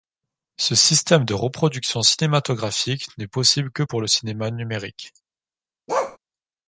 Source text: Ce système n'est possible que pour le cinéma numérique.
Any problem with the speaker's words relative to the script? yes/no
yes